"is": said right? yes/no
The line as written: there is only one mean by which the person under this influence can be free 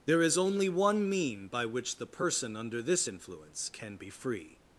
yes